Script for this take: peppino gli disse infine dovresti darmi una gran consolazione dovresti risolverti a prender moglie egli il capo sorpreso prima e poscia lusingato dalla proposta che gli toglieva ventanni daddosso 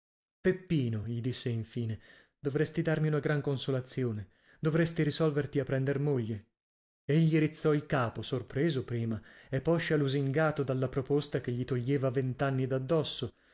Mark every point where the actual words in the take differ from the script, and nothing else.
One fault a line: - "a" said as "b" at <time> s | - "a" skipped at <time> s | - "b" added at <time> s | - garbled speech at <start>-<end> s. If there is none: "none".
- "rizzò" added at 7.4 s